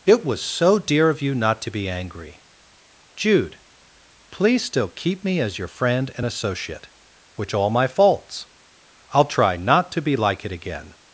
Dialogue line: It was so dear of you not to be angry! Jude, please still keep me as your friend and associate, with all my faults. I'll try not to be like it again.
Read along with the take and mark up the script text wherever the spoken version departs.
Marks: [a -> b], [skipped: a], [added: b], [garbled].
It was so dear of you not to be angry! Jude, please still keep me as your friend and associate, [with -> which] all my faults. I'll try not to be like it again.